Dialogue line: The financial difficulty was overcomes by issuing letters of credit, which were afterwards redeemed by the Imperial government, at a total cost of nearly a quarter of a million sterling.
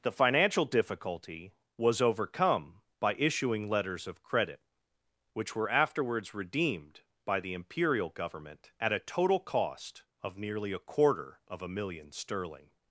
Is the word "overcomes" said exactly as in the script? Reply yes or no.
no